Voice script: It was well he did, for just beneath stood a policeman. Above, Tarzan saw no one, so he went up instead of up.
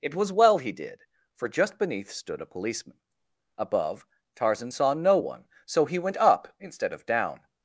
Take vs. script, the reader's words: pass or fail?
fail